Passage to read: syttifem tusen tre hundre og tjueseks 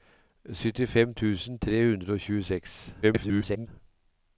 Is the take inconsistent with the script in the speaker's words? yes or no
yes